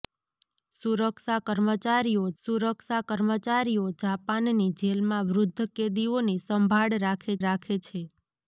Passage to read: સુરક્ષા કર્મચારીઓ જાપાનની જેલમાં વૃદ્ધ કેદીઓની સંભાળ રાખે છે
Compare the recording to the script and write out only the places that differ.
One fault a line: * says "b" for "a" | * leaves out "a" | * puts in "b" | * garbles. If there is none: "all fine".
* puts in "સુરક્ષા કર્મચારીઓ"
* puts in "રાખે"